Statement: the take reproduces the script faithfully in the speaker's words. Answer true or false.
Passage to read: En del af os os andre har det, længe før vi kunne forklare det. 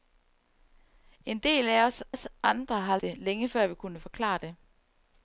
true